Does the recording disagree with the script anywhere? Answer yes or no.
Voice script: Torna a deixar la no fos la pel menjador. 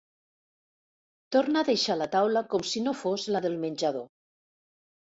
yes